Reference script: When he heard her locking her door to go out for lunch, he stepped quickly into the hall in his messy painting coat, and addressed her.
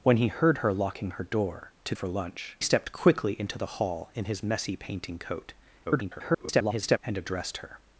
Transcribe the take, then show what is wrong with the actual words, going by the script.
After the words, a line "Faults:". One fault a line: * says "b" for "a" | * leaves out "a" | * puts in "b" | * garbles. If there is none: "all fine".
When he heard her locking her door to for lunch, stepped quickly into the hall in his messy painting coat, [garbled] and addressed her.
Faults:
* leaves out "go out"
* leaves out "he"
* garbles